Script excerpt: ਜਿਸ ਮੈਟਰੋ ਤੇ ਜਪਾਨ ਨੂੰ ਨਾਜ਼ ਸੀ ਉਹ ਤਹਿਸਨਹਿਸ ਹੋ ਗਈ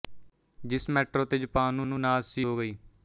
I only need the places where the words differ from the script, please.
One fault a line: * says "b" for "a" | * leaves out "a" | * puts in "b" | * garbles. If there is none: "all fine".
* puts in "ਨੂੰ"
* leaves out "ਉਹ ਤਹਿਸਨਹਿਸ"